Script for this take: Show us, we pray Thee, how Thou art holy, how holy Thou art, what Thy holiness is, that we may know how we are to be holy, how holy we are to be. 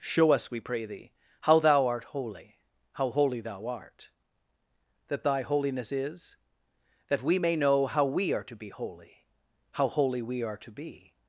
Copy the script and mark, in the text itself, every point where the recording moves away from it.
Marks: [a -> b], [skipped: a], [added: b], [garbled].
Show us, we pray Thee, how Thou art holy, how holy Thou art, [what -> that] Thy holiness is, that we may know how we are to be holy, how holy we are to be.